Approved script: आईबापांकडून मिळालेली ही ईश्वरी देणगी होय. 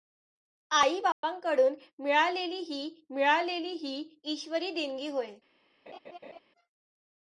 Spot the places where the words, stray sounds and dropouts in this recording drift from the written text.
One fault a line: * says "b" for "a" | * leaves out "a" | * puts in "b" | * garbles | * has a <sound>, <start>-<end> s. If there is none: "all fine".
* has a dropout, 1.1-1.2 s
* puts in "मिळालेली ही"
* has a laugh, 5.9-6.4 s